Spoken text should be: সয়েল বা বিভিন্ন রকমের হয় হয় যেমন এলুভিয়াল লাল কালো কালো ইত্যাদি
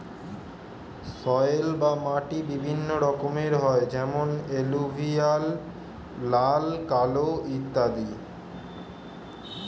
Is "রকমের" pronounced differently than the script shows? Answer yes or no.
no